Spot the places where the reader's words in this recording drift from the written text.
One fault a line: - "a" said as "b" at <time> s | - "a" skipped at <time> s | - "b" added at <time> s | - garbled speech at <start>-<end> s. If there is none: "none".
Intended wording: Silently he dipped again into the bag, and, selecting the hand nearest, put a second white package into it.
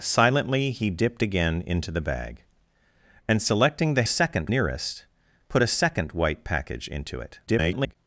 - "hand" said as "second" at 4.0 s
- garbled speech at 7.5-8.0 s